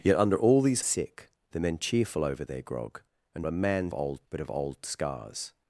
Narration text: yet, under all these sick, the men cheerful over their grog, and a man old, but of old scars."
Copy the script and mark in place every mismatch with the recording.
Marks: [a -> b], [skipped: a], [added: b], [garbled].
yet, under all these sick, the men cheerful over their grog, and a man old, but of old scars."